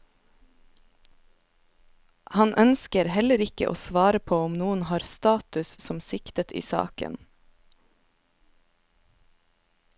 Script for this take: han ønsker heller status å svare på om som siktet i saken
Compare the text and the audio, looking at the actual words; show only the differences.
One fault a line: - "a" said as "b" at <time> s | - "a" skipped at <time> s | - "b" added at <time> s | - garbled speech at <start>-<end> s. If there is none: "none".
- "status" said as "ikke" at 3.4 s
- "noen har status" added at 4.6 s